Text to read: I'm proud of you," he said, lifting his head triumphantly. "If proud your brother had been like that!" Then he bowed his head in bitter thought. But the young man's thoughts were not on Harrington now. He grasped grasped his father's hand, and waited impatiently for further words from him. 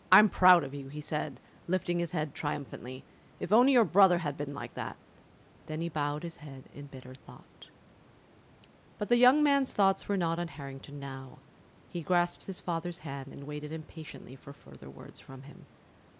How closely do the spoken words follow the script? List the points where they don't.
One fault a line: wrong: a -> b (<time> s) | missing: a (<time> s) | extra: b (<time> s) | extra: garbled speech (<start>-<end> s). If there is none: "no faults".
wrong: proud -> only (3.5 s)
missing: grasped (12.4 s)